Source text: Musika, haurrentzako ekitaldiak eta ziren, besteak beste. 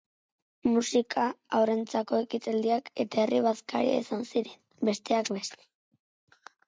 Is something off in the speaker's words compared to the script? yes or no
yes